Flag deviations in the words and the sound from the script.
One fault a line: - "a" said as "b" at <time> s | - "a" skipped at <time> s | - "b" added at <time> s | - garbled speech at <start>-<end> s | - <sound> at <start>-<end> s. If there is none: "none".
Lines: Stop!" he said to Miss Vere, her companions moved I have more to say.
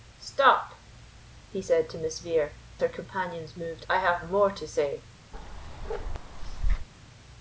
- bark at 5.3-6.9 s